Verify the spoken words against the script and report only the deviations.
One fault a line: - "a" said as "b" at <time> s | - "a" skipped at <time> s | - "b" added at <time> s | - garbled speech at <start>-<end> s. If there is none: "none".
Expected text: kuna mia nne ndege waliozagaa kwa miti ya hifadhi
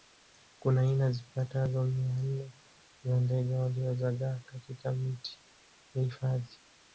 - "aina zipatazo" added at 0.8 s
- "za" added at 3.0 s
- "kwa" said as "katika" at 4.5 s